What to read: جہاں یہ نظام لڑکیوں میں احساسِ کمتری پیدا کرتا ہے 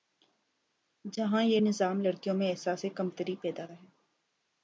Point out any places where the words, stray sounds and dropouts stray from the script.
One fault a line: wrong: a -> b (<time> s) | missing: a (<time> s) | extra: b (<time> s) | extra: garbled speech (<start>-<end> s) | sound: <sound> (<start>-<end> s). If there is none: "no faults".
missing: کرتا (3.7 s)